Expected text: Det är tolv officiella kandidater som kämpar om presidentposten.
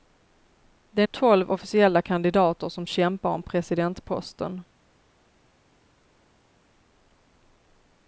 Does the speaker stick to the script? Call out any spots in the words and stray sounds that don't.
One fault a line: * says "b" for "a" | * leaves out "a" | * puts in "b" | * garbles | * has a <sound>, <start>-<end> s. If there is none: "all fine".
all fine